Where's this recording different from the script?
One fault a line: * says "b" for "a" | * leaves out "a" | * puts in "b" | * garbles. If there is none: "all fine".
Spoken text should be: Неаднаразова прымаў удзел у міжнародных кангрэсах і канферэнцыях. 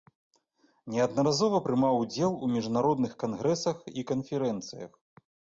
all fine